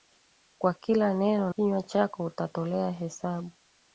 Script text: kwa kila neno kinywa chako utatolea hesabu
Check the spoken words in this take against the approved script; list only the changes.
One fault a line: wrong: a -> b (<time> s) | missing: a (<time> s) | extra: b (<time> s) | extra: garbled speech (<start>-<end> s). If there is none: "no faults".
no faults